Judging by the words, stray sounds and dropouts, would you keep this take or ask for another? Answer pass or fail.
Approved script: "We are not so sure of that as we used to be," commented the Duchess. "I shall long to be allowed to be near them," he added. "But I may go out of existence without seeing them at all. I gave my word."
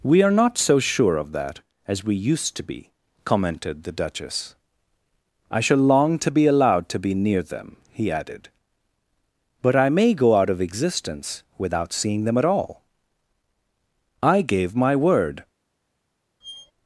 fail